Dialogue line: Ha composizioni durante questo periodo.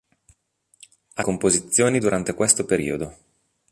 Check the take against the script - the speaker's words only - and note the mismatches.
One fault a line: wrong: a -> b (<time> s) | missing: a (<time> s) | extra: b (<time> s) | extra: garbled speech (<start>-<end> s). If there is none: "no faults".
no faults